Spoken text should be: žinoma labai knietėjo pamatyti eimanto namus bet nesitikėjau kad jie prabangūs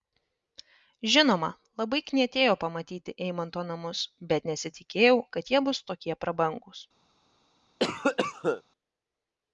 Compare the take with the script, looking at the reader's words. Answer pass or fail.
fail